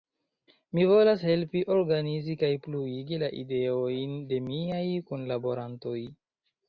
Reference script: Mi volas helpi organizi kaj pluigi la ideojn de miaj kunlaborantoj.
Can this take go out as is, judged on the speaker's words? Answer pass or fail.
pass